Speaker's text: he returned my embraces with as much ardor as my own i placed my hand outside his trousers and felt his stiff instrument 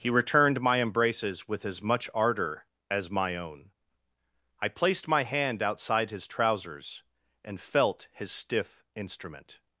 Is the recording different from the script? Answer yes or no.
no